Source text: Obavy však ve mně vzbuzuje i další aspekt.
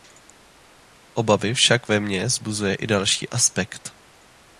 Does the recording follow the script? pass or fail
pass